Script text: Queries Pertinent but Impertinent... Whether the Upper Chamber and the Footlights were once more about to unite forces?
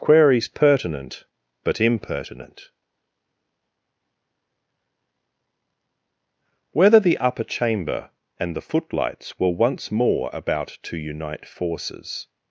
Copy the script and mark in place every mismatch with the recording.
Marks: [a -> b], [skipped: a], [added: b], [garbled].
Queries Pertinent but Impertinent... Whether the Upper Chamber and the Footlights were once more about to unite forces?